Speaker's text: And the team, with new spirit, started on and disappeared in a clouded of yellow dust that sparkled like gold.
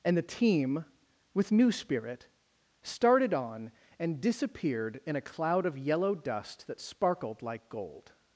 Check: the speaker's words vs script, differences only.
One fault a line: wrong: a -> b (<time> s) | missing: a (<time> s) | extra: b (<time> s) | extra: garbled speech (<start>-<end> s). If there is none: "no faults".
wrong: clouded -> cloud (5.2 s)